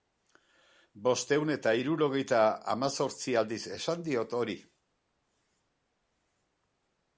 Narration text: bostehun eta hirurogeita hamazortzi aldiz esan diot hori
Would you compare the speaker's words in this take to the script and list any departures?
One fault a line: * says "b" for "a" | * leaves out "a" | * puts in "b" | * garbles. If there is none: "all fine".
all fine